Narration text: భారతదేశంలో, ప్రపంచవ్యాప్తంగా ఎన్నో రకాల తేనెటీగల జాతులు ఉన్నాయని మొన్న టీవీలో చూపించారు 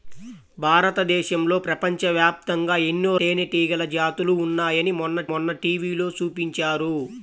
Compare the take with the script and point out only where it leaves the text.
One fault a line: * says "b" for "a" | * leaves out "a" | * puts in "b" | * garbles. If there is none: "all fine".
* leaves out "రకాల"
* puts in "మొన్న"